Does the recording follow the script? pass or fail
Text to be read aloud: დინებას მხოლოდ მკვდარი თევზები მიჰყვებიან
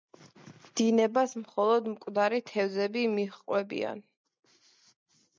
pass